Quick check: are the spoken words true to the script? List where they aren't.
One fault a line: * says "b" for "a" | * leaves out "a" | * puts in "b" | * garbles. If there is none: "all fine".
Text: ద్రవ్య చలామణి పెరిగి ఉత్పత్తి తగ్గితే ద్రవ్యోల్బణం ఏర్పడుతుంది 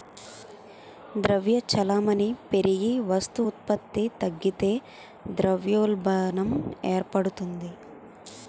* puts in "వస్తు"